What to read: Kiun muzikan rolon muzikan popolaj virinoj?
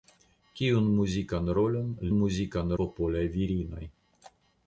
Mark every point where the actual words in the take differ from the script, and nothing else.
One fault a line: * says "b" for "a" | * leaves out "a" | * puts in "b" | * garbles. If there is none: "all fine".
all fine